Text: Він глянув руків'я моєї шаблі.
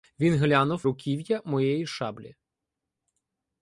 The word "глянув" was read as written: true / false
true